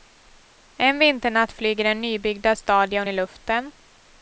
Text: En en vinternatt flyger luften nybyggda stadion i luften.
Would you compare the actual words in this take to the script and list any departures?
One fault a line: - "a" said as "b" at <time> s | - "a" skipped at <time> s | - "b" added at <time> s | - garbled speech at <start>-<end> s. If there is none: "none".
- "en" skipped at 1.0 s
- "luften" said as "den" at 1.8 s